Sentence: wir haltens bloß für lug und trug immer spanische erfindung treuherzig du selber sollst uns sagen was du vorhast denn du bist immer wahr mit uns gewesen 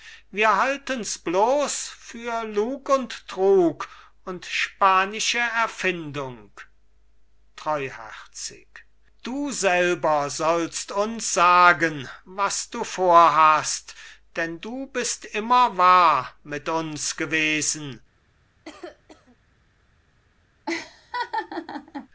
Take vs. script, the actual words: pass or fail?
fail